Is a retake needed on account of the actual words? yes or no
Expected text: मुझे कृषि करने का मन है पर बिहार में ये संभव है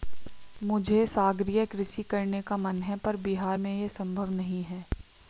yes